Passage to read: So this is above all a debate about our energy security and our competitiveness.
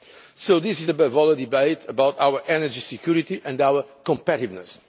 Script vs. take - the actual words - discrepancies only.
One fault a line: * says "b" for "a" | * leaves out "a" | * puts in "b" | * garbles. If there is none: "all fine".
all fine